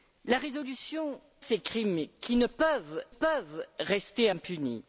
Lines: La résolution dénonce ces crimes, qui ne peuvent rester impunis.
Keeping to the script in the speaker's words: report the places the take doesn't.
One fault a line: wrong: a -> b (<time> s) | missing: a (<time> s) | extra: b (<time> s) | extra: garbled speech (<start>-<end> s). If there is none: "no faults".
missing: dénonce (1.2 s)
extra: peuvent (3.1 s)